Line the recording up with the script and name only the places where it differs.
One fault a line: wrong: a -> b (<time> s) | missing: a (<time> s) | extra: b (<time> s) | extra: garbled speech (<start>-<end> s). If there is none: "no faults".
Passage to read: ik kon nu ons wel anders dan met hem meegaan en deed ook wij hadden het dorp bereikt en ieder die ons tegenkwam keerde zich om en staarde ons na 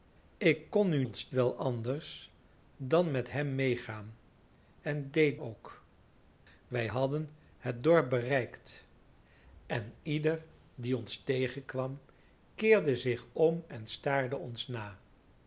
no faults